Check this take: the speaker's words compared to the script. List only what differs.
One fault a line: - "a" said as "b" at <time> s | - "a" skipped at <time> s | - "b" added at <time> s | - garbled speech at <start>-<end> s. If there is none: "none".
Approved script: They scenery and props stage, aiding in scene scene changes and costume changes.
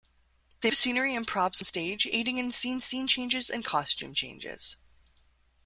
none